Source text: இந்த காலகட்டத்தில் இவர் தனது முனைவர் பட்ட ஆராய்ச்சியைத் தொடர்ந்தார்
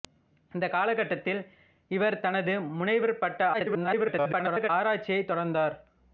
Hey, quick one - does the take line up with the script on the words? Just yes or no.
no